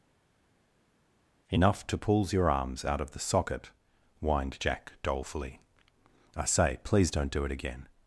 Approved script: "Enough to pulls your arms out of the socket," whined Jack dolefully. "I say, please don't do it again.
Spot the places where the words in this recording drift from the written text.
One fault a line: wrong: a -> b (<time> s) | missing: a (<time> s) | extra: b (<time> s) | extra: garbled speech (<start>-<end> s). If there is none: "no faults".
no faults